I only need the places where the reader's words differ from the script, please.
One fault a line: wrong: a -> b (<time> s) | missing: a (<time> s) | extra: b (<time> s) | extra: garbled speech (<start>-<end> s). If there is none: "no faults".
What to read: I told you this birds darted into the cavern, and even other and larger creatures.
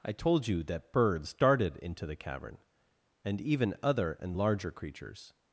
wrong: this -> that (0.6 s)